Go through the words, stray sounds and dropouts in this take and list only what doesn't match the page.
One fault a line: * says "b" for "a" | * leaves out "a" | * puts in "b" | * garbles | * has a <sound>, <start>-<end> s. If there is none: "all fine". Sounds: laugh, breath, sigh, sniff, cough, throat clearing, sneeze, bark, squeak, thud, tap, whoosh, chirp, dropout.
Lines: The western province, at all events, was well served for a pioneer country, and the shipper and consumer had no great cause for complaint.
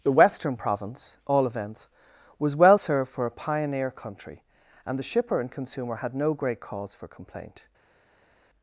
* leaves out "at"